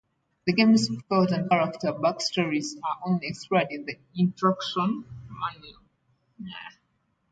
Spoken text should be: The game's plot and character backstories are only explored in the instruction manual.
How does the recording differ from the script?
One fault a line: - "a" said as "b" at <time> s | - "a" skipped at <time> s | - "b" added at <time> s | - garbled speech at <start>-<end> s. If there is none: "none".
none